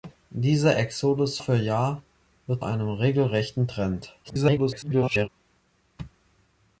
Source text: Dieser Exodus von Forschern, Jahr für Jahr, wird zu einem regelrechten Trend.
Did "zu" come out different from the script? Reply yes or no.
yes